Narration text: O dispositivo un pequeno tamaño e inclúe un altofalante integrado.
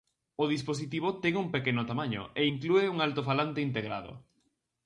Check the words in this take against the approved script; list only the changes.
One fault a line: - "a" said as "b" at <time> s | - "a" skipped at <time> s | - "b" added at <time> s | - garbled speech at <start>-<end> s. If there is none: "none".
- "ten" added at 1.2 s